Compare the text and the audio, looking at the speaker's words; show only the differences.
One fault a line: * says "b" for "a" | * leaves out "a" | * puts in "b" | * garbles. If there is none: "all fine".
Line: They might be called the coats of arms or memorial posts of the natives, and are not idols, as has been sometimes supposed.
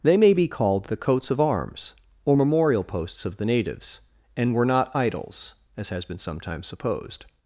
* says "may" for "might"
* says "were" for "are"